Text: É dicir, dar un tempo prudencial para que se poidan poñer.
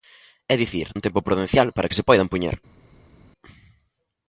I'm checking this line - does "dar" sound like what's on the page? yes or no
no